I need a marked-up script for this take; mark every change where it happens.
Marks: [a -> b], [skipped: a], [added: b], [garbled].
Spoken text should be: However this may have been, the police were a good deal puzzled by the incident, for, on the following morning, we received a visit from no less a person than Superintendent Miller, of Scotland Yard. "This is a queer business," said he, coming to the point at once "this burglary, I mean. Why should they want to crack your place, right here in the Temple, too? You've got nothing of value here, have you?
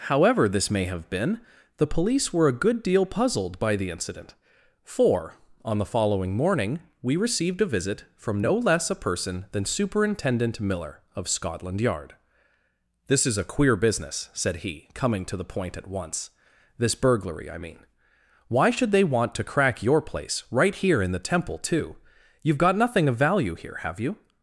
However this may have been, the police were a good deal puzzled by the incident, for, on the following morning, we received a visit from no less a person than Superintendent Miller, of Scotland Yard. "This is a queer business," said he, coming to the point at once "this burglary, I mean. Why should they want to crack your place, right here in the Temple, too? You've got nothing of value here, have you?